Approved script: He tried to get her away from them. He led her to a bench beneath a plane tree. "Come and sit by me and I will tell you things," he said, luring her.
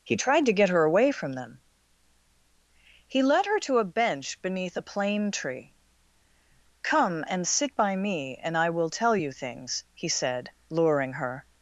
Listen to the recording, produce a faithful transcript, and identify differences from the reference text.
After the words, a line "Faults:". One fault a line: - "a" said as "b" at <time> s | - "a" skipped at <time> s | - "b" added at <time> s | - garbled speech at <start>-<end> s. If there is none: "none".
He tried to get her away from them. He led her to a bench beneath a plane tree. "Come and sit by me and I will tell you things," he said, luring her.
Faults:
none